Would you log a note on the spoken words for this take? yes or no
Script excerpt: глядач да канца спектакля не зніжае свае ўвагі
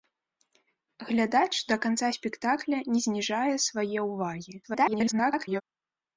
yes